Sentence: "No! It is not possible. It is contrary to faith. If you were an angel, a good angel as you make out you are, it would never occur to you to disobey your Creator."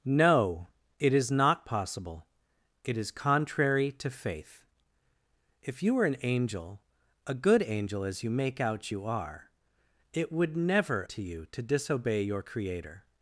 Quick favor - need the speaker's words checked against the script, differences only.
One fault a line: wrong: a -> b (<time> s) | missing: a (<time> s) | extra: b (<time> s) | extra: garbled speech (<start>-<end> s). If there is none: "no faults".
missing: occur (11.0 s)